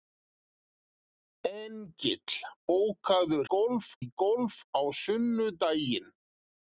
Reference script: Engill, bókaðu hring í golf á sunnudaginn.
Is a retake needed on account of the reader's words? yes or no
yes